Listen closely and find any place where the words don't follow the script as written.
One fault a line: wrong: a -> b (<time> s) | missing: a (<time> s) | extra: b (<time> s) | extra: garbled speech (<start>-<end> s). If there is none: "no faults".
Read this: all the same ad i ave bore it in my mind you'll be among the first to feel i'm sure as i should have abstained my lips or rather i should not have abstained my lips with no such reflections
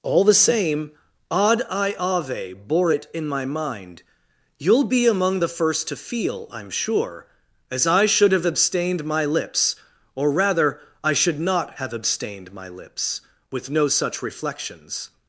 no faults